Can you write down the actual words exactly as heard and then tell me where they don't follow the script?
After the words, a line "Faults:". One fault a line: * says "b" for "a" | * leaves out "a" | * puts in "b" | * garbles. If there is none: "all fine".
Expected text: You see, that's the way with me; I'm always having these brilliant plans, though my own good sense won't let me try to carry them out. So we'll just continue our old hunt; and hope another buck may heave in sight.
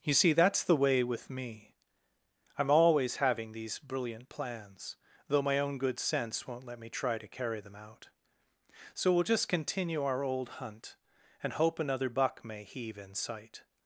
You see, that's the way with me; I'm always having these brilliant plans, though my own good sense won't let me try to carry them out. So we'll just continue our old hunt; and hope another buck may heave in sight.
Faults:
all fine